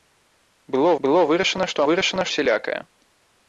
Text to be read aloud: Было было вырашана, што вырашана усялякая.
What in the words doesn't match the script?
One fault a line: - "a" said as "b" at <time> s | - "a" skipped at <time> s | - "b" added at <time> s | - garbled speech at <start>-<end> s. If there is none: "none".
none